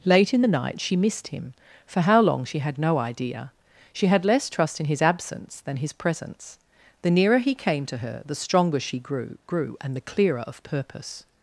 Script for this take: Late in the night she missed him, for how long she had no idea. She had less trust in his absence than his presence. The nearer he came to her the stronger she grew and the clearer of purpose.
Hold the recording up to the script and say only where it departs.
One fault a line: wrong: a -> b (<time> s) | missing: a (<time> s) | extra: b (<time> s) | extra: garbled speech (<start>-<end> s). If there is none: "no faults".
extra: grew (9.5 s)